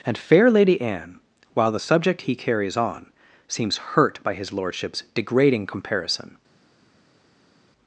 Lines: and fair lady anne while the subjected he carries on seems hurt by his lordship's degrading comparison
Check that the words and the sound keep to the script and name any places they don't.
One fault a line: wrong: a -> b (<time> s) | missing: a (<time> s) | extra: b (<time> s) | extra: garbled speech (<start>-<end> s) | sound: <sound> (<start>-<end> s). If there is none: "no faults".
wrong: subjected -> subject (1.8 s)